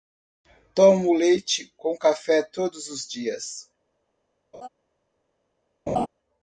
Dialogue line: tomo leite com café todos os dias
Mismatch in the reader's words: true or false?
false